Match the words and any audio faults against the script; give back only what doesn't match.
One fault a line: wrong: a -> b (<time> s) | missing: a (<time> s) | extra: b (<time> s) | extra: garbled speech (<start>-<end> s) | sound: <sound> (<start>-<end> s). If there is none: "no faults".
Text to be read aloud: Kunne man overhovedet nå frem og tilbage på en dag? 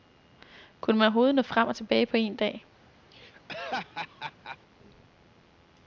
sound: laugh (3.1-4.6 s)